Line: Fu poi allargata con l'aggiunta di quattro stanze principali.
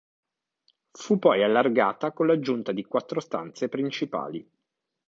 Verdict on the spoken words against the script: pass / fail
pass